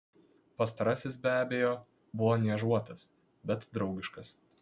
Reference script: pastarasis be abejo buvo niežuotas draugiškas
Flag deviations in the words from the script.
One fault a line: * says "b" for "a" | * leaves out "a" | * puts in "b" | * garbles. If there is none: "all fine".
* puts in "bet"